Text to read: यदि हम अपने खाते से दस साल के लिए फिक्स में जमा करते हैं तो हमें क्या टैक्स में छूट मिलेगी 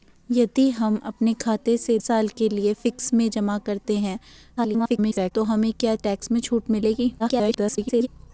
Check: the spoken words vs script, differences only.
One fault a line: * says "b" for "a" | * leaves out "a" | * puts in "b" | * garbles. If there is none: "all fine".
* leaves out "दस"
* garbles
* garbles